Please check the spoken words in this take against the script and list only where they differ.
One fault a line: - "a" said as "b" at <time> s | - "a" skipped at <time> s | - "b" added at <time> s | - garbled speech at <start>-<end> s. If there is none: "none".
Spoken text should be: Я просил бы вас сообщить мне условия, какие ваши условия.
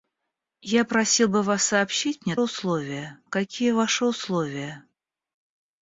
none